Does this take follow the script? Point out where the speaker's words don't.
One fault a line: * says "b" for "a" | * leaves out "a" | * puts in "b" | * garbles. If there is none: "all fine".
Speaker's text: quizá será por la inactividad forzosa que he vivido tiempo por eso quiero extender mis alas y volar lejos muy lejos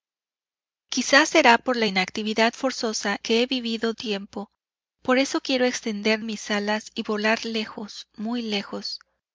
all fine